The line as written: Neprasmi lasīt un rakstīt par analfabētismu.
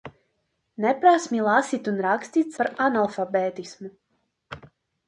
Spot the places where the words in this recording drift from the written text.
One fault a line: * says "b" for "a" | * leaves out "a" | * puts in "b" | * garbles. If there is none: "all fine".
all fine